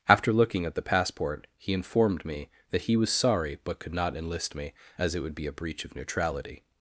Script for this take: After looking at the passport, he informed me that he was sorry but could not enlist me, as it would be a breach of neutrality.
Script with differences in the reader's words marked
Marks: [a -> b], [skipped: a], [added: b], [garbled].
After looking at the passport, he informed me that he was sorry but could not enlist me, as it would be a breach of neutrality.